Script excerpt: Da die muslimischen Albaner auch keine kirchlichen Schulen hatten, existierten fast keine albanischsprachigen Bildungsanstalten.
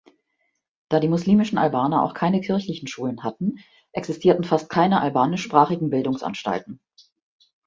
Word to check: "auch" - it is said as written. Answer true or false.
true